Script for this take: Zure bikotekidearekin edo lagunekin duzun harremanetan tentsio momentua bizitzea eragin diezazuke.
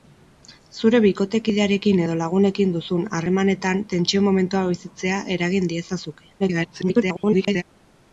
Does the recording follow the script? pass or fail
fail